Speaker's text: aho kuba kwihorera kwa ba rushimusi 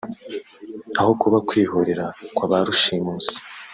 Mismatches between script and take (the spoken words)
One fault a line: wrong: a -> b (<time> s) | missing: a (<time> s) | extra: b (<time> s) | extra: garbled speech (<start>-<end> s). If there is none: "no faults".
no faults